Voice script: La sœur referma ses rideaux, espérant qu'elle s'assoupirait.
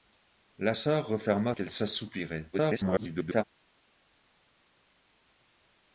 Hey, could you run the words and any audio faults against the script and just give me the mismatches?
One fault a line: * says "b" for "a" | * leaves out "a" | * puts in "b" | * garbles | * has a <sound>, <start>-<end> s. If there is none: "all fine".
* leaves out "ses rideaux espérant"
* garbles